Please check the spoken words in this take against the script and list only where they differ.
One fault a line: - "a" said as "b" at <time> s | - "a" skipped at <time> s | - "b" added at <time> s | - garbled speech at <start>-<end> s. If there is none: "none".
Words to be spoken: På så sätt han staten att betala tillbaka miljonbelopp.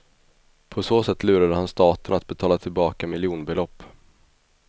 - "lurade" added at 1.2 s